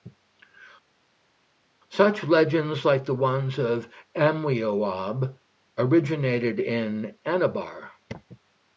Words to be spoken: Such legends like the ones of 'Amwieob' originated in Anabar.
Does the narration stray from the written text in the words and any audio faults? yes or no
no